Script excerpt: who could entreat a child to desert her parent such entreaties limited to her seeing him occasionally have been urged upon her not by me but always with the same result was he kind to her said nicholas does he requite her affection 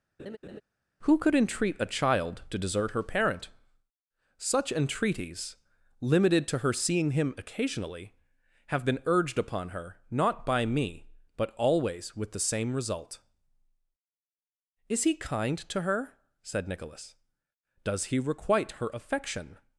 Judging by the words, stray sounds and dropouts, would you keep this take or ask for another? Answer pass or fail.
fail